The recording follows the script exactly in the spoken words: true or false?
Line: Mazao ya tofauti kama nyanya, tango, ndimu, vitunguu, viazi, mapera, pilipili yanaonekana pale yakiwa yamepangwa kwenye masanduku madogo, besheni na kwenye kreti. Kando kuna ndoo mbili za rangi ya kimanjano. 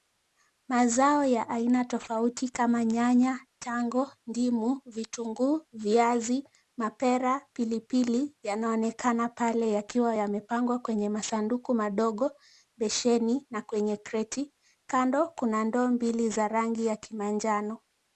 false